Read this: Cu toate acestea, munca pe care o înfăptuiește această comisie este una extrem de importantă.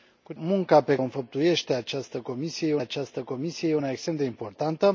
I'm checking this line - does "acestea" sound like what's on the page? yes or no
no